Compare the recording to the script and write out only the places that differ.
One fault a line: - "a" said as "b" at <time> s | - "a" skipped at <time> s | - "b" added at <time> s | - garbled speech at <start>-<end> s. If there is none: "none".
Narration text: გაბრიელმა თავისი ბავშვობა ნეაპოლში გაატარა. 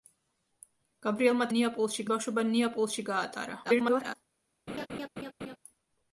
- "თავისი" said as "ნეაპოლში" at 1.5 s
- garbled speech at 3.6-4.2 s